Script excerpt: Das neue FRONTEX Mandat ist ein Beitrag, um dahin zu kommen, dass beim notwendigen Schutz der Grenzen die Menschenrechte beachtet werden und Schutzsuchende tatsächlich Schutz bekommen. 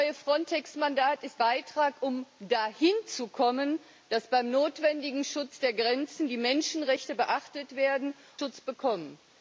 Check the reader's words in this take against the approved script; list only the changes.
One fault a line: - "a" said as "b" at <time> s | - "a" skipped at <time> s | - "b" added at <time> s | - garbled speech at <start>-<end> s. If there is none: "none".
- "ein" skipped at 1.4 s
- "und Schutzsuchende tatsächlich" skipped at 8.2 s